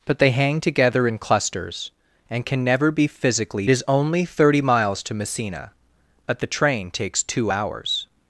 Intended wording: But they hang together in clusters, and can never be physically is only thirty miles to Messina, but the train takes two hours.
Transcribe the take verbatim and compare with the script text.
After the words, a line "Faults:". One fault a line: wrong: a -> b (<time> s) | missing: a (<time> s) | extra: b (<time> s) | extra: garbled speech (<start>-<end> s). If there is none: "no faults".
But they hang together in clusters, and can never be physically is only thirty miles to Messina, but the train takes two hours.
Faults:
no faults